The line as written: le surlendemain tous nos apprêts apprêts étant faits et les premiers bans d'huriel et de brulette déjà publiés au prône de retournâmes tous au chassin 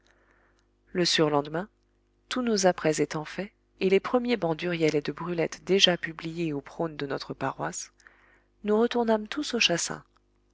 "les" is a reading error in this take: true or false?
false